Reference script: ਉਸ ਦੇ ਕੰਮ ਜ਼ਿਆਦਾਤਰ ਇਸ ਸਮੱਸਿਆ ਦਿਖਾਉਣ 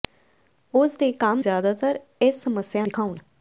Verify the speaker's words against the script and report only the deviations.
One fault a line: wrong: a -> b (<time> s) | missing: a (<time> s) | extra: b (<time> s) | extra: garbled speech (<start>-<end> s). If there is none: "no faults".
no faults